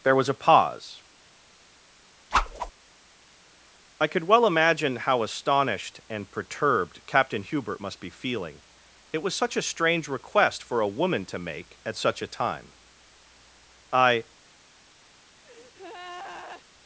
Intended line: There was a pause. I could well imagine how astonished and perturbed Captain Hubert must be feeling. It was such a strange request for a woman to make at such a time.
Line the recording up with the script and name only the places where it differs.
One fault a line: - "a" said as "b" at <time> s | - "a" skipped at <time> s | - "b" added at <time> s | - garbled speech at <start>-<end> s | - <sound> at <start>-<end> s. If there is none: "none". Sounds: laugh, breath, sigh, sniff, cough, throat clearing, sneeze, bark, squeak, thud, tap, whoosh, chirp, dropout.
- whoosh at 2.3-2.7 s
- "I" added at 13.9 s
- breath at 15.4-16.6 s